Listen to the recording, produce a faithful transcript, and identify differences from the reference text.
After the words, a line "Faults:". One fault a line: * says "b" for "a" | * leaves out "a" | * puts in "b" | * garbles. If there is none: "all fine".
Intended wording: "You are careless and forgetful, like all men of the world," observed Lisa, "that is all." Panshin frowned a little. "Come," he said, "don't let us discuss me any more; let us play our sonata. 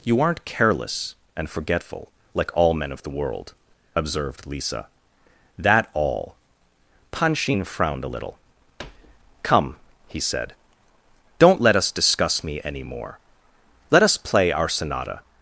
"You aren't careless and forgetful, like all men of the world," observed Lisa, "that all." Panshin frowned a little. "Come," he said, "don't let us discuss me any more; let us play our sonata.
Faults:
* says "aren't" for "are"
* leaves out "is"